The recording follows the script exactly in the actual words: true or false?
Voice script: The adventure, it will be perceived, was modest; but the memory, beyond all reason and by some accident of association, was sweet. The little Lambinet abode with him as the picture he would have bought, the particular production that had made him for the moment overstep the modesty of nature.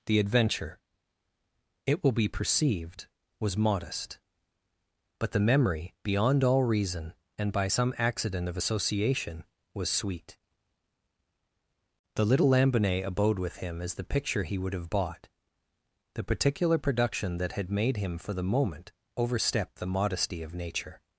true